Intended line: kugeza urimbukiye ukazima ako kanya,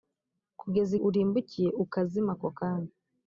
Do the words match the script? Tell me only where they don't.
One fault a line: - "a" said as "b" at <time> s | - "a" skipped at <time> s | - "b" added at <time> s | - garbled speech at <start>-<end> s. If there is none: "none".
none